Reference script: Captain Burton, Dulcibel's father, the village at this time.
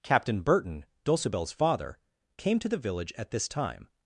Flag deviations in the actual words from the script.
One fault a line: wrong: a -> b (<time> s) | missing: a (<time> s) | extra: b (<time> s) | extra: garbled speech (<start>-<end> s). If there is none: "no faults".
extra: came to (2.4 s)